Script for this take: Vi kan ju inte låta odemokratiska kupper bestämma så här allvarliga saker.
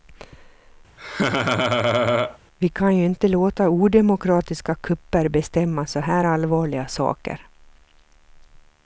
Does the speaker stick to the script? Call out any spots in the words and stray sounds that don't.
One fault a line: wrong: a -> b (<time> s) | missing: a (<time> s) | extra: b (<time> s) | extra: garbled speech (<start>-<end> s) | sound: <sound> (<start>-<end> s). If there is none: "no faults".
sound: laugh (1.0-2.4 s)